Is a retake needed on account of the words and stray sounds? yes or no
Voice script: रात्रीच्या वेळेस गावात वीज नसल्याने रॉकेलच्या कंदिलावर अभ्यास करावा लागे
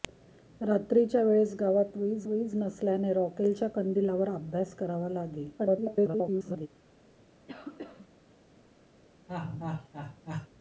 yes